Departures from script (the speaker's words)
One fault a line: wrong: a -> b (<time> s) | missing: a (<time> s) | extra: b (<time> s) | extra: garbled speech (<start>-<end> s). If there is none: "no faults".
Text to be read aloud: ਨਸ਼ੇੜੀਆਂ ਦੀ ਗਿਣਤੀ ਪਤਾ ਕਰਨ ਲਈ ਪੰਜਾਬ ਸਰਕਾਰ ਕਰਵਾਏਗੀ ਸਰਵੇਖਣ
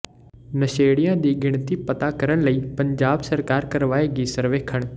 no faults